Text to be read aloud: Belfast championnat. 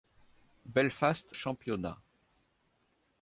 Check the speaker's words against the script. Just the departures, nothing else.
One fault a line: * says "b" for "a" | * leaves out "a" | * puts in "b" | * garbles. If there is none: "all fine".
all fine